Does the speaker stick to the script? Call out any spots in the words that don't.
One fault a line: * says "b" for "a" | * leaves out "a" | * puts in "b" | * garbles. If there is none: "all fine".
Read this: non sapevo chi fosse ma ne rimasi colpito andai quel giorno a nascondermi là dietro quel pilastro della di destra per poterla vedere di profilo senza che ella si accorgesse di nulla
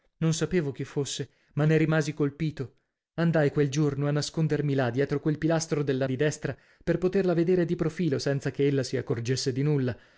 all fine